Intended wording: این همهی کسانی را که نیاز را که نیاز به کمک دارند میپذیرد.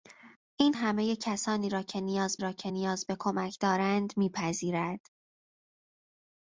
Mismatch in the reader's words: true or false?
false